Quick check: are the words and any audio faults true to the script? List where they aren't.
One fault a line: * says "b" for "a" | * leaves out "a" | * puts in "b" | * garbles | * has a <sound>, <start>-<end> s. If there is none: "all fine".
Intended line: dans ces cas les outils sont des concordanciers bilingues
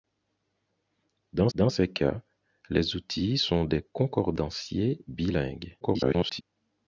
* puts in "dans"
* garbles